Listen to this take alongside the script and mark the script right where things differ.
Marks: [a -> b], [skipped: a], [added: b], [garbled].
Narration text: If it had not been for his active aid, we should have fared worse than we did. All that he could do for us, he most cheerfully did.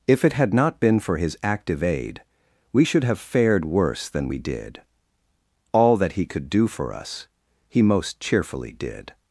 If it had not been for his active aid, we should have fared worse than we did. All that he could do for us, he most cheerfully did.